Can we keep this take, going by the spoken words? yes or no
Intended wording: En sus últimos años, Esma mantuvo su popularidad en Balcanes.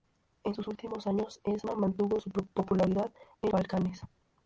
yes